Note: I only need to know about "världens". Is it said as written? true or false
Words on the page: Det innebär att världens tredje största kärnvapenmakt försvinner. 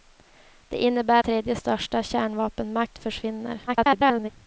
false